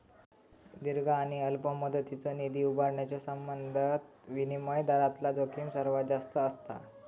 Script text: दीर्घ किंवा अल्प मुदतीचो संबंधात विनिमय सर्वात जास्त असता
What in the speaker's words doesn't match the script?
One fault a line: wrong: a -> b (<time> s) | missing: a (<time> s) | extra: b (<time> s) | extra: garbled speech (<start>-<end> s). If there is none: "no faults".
wrong: किंवा -> आणि (1.1 s)
extra: निधी उभारण्याच्यो (2.3 s)
extra: दरातला जोखीम (4.8 s)